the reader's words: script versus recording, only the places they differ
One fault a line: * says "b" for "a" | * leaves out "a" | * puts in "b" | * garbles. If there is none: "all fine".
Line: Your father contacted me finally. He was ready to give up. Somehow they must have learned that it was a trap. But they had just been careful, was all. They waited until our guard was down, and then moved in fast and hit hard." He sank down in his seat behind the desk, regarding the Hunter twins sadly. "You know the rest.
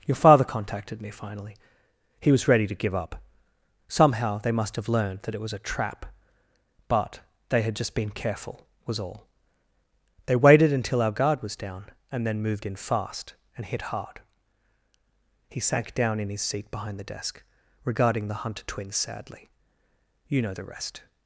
all fine